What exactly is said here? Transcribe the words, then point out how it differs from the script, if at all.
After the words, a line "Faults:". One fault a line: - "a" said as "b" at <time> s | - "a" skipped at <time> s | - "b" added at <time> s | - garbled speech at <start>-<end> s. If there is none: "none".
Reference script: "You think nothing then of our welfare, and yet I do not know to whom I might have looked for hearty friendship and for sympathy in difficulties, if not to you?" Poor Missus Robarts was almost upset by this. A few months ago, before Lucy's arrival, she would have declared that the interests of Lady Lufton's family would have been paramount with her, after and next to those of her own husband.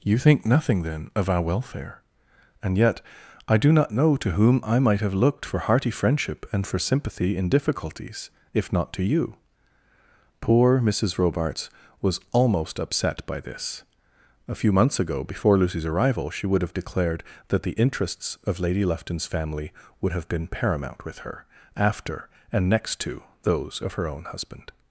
"You think nothing then of our welfare, and yet I do not know to whom I might have looked for hearty friendship and for sympathy in difficulties, if not to you?" Poor Missus Robarts was almost upset by this. A few months ago, before Lucy's arrival, she would have declared that the interests of Lady Lufton's family would have been paramount with her, after and next to those of her own husband.
Faults:
none